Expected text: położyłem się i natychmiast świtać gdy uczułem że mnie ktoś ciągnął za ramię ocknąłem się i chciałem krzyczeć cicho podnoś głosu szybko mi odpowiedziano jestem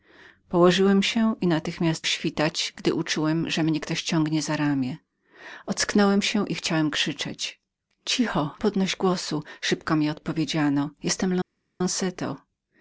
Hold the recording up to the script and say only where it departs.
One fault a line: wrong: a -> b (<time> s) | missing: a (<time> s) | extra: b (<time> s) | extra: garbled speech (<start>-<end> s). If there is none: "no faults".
no faults